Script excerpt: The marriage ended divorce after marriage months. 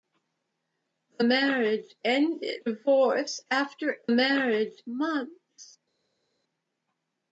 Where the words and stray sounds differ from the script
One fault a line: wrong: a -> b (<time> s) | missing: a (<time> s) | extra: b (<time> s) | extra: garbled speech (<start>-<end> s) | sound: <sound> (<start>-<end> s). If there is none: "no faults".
no faults